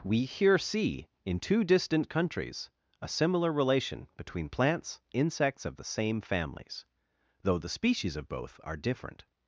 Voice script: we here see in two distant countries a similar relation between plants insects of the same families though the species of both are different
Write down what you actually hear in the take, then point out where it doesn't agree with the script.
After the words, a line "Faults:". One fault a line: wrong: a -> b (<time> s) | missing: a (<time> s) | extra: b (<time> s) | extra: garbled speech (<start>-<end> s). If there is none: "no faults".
we here see in two distant countries a similar relation between plants insects of the same families though the species of both are different
Faults:
no faults